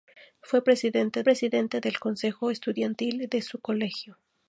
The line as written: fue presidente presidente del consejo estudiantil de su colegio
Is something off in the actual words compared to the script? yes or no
no